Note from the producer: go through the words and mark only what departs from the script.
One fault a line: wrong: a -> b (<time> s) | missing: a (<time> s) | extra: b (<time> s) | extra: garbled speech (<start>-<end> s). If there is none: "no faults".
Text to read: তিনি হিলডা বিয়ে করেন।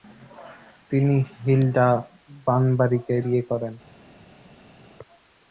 extra: বানবারিকে (2.5 s)